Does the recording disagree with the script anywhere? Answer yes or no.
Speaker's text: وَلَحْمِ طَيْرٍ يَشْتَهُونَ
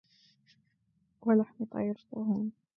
no